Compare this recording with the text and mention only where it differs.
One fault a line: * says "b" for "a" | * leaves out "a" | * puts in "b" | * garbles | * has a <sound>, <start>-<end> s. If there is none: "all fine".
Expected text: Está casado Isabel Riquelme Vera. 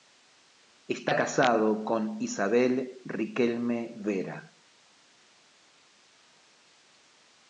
* puts in "con"